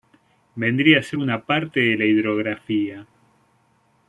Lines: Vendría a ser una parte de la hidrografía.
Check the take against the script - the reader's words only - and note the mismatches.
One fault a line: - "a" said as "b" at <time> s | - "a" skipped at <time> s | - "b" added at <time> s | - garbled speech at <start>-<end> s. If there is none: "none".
none